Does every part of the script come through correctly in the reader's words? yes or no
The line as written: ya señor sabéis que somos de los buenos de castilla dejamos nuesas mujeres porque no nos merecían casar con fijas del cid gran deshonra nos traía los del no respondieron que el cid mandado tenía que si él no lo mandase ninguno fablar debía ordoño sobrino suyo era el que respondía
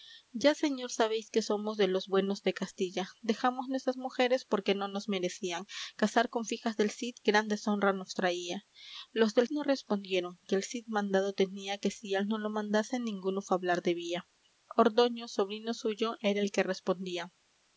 yes